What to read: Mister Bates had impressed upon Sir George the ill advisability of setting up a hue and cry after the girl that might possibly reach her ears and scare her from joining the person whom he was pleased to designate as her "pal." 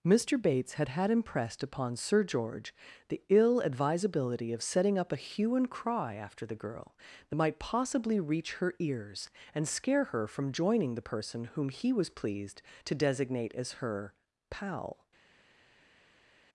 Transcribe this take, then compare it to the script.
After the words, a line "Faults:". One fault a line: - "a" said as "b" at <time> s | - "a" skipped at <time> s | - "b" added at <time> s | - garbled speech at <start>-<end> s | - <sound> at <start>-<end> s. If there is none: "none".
Mister Bates had had impressed upon Sir George the ill advisability of setting up a hue and cry after the girl that might possibly reach her ears and scare her from joining the person whom he was pleased to designate as her "pal."
Faults:
- "had" added at 0.9 s